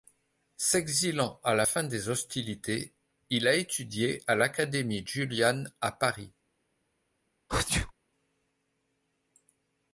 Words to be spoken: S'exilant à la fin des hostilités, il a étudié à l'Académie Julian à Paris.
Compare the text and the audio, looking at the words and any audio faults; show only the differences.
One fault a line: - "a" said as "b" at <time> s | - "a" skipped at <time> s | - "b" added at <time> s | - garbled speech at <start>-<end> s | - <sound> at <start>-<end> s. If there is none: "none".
- sneeze at 7.5-7.9 s